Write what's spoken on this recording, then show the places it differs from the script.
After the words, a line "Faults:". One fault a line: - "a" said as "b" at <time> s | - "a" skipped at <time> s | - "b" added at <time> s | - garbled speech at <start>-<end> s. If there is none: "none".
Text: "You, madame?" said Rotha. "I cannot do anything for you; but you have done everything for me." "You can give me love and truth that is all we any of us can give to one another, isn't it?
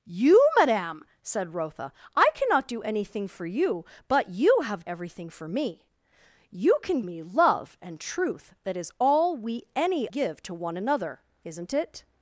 "You, madame?" said Rotha. "I cannot do anything for you; but you have everything for me." "You can me love and truth that is all we any give to one another, isn't it?
Faults:
- "done" skipped at 4.8 s
- "give" skipped at 7.0 s
- "of us can" skipped at 10.1 s